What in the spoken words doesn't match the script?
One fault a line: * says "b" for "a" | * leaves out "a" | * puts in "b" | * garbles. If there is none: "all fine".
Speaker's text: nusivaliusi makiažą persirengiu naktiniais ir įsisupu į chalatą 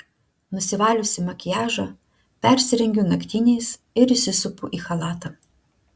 all fine